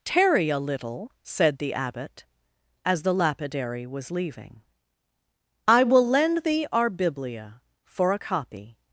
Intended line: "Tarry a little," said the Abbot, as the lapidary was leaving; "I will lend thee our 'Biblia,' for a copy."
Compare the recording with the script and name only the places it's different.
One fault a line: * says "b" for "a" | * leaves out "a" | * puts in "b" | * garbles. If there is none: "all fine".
all fine